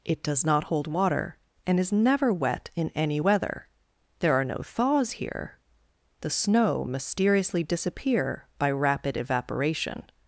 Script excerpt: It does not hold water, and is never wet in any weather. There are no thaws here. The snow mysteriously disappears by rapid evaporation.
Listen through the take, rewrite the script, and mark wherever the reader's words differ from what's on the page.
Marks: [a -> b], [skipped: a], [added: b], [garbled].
It does not hold water, and is never wet in any weather. There are no thaws here. The snow mysteriously [disappears -> disappear] by rapid evaporation.